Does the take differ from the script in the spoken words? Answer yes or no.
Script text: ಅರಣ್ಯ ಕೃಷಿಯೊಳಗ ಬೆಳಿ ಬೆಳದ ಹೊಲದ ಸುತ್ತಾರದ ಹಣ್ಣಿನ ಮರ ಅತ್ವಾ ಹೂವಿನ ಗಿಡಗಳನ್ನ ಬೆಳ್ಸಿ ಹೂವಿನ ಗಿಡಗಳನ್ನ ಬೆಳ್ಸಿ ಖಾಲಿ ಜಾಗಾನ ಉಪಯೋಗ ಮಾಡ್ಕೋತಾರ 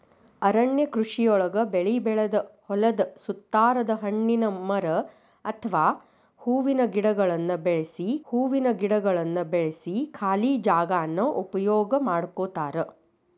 no